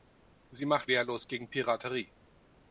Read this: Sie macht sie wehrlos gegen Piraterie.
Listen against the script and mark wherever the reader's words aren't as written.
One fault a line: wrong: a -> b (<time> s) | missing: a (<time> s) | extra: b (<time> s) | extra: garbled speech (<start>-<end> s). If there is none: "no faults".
missing: sie (0.9 s)